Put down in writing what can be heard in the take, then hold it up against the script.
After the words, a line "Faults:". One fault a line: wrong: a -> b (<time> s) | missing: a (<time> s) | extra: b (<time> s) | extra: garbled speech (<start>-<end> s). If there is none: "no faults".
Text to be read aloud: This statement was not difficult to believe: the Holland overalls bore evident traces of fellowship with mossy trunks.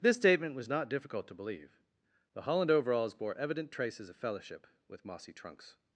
This statement was not difficult to believe: the Holland overalls bore evident traces of fellowship with mossy trunks.
Faults:
no faults